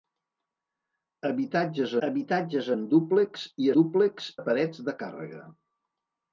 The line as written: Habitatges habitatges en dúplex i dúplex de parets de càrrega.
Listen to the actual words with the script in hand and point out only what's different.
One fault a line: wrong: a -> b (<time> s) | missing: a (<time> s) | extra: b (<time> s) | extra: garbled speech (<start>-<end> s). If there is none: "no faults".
no faults